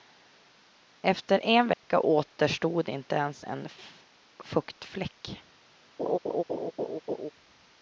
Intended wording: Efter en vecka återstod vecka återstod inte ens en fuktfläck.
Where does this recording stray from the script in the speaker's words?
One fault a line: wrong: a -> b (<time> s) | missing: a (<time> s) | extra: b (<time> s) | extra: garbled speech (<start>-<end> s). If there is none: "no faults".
missing: vecka återstod (2.9 s)